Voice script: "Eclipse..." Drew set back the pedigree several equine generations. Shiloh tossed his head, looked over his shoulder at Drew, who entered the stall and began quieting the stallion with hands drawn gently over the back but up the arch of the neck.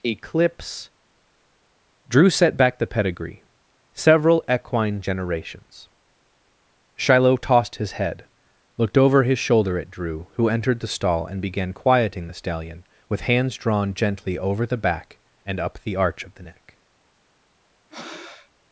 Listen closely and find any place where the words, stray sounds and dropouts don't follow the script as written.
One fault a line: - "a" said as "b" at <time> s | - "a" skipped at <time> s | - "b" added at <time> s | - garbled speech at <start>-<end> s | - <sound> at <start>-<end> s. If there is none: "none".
- "but" said as "and" at 15.4 s
- breath at 17.9-18.5 s